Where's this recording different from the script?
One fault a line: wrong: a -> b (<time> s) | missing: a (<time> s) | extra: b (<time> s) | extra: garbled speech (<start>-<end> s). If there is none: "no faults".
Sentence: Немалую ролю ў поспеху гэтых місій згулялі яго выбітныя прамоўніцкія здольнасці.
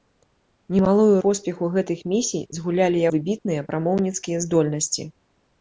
missing: ролю ў (1.2 s)
missing: яго (3.0 s)